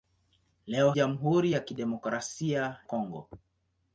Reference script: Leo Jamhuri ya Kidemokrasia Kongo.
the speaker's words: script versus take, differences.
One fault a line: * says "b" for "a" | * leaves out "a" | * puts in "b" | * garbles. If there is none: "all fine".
all fine